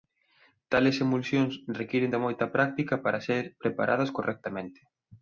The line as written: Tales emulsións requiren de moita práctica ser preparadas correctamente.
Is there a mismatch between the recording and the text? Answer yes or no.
yes